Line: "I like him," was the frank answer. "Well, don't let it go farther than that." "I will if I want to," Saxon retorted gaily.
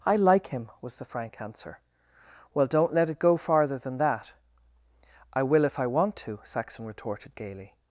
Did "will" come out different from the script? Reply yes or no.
no